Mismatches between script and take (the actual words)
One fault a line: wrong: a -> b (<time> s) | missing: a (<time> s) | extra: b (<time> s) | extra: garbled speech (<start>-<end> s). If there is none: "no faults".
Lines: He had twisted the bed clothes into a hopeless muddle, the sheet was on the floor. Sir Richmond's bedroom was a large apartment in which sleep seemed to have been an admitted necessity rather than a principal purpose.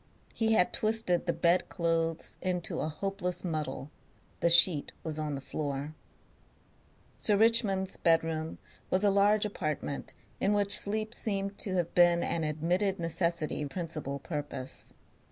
missing: rather than a (13.7 s)